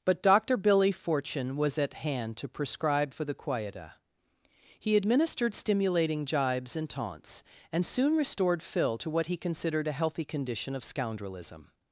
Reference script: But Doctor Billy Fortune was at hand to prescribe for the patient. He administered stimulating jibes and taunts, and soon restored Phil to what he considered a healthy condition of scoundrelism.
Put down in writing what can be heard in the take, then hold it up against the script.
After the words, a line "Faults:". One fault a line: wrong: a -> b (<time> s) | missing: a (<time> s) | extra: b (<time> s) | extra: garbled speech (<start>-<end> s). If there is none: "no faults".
But Doctor Billy Fortune was at hand to prescribe for the quieta. He administered stimulating jibes and taunts, and soon restored Phil to what he considered a healthy condition of scoundrelism.
Faults:
wrong: patient -> quieta (3.3 s)